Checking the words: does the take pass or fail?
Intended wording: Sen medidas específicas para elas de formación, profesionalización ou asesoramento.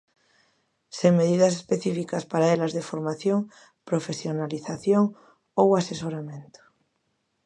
pass